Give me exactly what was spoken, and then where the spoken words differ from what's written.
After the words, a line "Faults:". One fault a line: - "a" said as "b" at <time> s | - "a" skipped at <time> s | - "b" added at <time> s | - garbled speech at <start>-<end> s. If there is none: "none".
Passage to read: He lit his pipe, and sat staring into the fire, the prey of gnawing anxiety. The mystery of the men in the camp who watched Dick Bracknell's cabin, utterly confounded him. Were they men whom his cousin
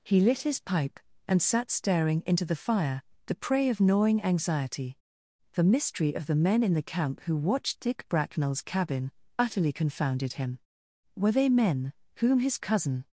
He lit his pipe, and sat staring into the fire, the prey of gnawing anxiety. The mystery of the men in the camp who watched Dick Bracknell's cabin, utterly confounded him. Were they men whom his cousin
Faults:
none